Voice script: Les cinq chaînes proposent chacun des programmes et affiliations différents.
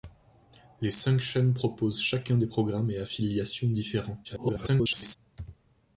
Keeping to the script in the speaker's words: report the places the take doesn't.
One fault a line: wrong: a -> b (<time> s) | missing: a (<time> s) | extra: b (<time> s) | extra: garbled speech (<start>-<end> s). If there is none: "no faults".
extra: garbled speech (4.2-5.2 s)